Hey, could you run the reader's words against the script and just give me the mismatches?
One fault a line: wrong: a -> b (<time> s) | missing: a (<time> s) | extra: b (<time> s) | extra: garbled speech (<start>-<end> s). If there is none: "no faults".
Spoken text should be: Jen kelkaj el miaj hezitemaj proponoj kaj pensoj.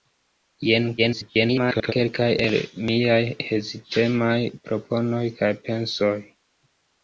extra: garbled speech (1.0-1.9 s)